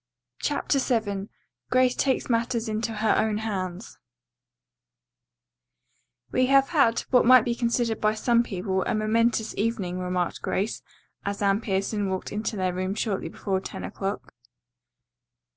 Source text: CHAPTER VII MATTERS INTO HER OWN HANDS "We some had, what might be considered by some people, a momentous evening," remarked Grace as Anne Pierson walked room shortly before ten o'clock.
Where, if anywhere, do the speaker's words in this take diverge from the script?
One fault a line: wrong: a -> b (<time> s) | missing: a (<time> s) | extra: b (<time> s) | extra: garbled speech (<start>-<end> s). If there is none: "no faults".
extra: GRACE TAKES (1.7 s)
wrong: some -> have (6.5 s)
extra: into their (12.3 s)